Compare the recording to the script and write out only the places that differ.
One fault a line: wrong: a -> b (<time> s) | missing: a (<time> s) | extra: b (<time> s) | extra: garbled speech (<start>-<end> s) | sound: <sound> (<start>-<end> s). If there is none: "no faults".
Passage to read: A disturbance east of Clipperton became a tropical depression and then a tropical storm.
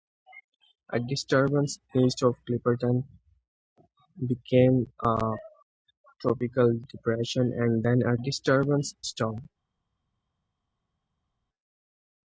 wrong: tropical -> disturbance (8.1 s)